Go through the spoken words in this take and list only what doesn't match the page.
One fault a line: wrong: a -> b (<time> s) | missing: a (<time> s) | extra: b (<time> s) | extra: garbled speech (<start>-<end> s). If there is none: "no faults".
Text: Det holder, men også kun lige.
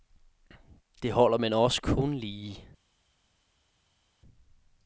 no faults